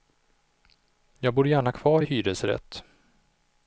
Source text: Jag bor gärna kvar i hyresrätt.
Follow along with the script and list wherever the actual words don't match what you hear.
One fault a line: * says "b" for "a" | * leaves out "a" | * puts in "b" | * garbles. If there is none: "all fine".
all fine